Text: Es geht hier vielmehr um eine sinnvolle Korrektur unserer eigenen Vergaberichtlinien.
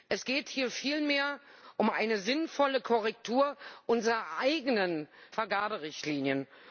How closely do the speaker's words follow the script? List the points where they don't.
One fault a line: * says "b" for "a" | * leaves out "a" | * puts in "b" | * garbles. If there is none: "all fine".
all fine